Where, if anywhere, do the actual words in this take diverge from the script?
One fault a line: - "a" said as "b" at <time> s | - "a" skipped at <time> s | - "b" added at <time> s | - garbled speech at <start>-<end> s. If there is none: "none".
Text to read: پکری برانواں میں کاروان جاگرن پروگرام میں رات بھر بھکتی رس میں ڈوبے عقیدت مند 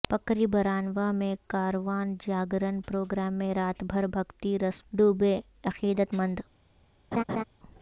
- "میں" skipped at 4.8 s